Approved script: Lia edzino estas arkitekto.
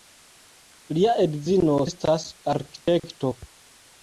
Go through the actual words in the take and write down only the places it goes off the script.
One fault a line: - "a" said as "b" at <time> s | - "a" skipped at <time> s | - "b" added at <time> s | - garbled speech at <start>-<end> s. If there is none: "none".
none